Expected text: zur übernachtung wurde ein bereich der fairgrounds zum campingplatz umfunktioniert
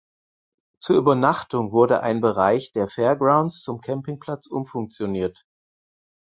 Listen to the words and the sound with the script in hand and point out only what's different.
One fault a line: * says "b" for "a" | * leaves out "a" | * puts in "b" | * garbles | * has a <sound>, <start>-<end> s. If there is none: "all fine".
all fine